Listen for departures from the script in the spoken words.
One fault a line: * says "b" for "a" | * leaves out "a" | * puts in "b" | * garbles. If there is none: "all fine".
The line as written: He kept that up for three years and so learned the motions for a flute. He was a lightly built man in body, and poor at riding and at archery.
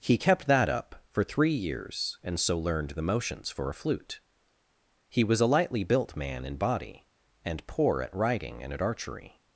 all fine